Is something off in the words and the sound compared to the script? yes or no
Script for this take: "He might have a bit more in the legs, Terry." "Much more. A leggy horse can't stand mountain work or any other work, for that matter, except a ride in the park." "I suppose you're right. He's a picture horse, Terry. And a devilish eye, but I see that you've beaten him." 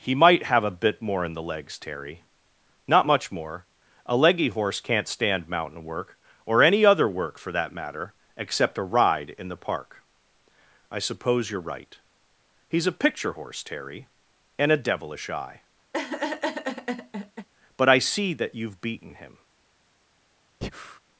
yes